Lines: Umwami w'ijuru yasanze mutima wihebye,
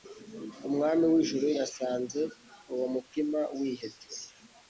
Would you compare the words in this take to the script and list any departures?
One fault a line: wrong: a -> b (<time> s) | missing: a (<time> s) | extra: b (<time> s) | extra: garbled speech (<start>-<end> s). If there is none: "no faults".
extra: uwo (2.7 s)